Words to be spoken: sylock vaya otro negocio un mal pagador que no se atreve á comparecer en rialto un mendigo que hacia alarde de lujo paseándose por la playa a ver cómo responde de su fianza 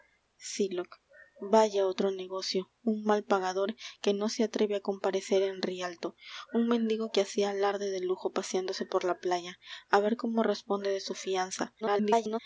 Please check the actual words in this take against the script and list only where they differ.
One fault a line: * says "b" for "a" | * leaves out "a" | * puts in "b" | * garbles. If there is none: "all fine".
* garbles